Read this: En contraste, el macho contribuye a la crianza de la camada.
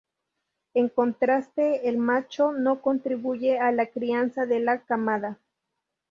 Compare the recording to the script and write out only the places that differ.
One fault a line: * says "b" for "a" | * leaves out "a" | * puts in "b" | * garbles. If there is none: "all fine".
* puts in "no"